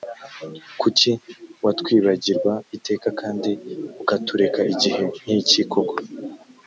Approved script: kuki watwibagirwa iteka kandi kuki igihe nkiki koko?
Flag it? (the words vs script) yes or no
yes